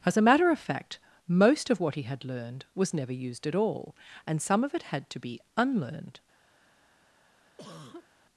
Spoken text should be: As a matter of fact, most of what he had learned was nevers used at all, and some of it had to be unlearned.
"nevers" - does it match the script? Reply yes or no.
no